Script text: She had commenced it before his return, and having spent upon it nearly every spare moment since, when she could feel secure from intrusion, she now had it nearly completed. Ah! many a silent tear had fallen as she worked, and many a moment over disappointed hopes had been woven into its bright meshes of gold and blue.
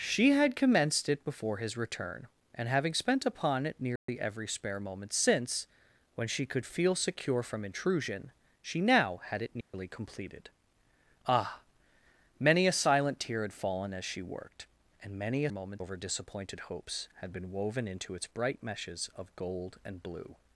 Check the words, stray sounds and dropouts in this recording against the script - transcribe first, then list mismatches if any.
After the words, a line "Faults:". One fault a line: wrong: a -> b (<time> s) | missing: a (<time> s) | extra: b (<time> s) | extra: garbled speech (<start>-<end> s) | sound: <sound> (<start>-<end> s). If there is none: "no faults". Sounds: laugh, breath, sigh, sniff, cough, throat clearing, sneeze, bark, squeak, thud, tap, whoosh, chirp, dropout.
She had commenced it before his return, and having spent upon it nearly every spare moment since, when she could feel secure from intrusion, she now had it nearly completed. Ah! many a silent tear had fallen as she worked, and many a moment over disappointed hopes had been woven into its bright meshes of gold and blue.
Faults:
sound: dropout (4.0-4.1 s)
sound: dropout (9.6-9.7 s)